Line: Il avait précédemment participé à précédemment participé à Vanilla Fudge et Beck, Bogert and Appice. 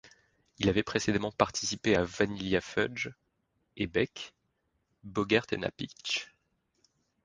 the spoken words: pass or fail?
fail